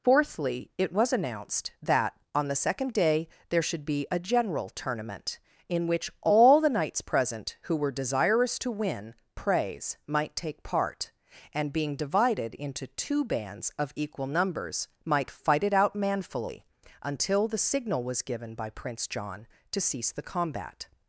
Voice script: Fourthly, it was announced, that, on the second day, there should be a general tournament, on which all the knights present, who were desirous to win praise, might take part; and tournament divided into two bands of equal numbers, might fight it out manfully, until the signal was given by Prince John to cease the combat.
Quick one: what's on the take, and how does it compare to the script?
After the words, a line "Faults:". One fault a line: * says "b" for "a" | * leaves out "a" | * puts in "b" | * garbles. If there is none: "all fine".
Fourthly, it was announced, that, on the second day, there should be a general tournament, in which all the knights present, who were desirous to win praise, might take part; and being divided into two bands of equal numbers, might fight it out manfully, until the signal was given by Prince John to cease the combat.
Faults:
* says "in" for "on"
* says "being" for "tournament"